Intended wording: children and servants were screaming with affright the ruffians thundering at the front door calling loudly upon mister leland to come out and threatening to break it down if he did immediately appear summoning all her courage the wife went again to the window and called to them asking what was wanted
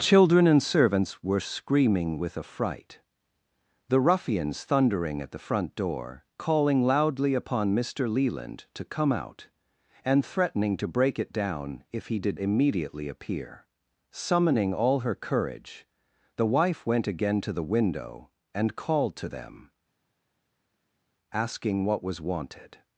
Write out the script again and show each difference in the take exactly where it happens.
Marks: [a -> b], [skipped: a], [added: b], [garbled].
children and servants were screaming with affright the ruffians thundering at the front door calling loudly upon mister leland to come out and threatening to break it down if he did immediately appear summoning all her courage the wife went again to the window and called to them asking what was wanted